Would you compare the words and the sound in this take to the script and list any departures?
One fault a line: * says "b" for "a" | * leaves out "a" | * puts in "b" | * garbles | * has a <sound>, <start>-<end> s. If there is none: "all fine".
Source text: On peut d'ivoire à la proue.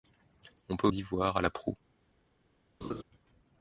* has a laugh, 2.8-3.0 s